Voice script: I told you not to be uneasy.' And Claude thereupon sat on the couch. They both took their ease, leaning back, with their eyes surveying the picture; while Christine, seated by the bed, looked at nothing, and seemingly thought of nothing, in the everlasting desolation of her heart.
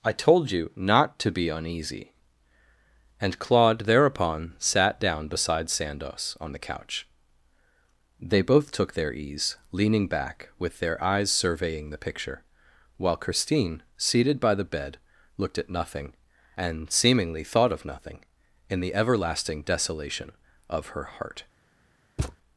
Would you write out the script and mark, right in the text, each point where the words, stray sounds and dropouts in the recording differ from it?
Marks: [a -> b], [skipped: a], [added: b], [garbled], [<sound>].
I told you not to be uneasy.' And Claude thereupon sat [added: down beside Sandoz] on the couch. They both took their ease, leaning back, with their eyes surveying the picture; while Christine, seated by the bed, looked at nothing, and seemingly thought of nothing, in the everlasting desolation of her heart. [thud]